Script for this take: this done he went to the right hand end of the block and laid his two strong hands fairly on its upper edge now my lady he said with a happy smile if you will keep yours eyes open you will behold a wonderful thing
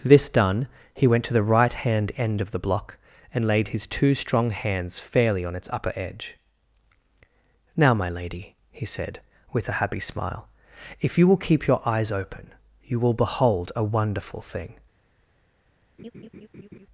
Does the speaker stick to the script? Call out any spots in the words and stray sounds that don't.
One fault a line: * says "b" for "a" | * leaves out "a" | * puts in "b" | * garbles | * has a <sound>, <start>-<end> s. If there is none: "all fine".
* says "your" for "yours"
* has a laugh, 16.0-16.9 s